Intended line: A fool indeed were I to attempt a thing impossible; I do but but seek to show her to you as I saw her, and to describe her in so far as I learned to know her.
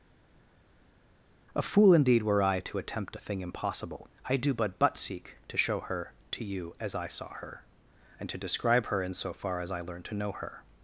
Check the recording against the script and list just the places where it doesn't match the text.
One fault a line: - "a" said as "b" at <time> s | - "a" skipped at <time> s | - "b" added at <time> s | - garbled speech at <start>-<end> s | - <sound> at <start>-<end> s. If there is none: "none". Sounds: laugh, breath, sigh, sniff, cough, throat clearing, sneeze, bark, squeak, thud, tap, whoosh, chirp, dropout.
none